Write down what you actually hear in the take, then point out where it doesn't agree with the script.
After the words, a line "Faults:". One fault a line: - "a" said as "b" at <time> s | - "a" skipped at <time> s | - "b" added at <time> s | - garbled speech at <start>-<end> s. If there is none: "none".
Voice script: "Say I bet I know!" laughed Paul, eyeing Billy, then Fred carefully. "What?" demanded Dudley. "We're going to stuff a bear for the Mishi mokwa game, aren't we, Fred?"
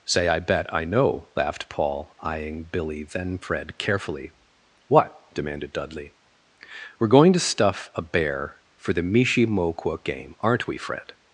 "Say I bet I know!" laughed Paul, eyeing Billy, then Fred carefully. "What?" demanded Dudley. "We're going to stuff a bear for the Mishi mokwa game, aren't we, Fred?"
Faults:
none